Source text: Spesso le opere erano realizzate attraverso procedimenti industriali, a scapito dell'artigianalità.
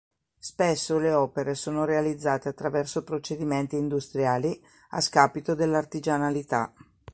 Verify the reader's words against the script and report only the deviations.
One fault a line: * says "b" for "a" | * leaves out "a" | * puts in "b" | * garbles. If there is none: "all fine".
* says "sono" for "erano"